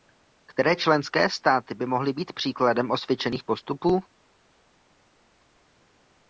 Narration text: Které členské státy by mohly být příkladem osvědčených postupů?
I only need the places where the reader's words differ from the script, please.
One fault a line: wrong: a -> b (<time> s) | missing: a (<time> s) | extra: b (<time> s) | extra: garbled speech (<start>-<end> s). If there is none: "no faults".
no faults